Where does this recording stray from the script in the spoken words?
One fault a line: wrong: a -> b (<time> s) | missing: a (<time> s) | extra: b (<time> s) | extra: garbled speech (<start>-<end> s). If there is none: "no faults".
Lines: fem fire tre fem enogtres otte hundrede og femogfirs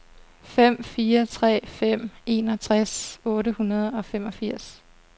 no faults